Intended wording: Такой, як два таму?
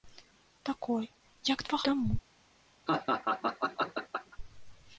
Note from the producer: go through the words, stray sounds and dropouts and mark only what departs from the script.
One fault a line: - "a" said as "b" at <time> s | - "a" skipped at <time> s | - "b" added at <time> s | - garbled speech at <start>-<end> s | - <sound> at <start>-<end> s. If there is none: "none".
- laugh at 2.9-4.4 s